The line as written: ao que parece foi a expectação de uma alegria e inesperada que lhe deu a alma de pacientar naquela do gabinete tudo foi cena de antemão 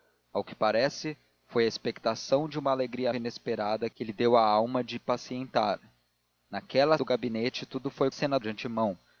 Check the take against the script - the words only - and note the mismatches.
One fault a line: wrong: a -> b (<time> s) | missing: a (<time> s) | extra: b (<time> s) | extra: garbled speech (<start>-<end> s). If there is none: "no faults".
no faults